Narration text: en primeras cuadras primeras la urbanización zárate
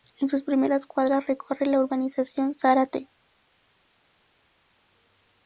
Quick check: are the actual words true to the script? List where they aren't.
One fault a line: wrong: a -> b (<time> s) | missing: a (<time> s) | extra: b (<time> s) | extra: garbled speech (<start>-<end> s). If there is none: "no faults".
extra: sus (0.3 s)
wrong: primeras -> recorre (1.3 s)